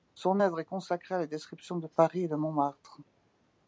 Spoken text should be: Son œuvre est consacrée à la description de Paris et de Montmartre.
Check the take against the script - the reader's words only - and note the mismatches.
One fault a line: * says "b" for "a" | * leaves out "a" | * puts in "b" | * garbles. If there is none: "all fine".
all fine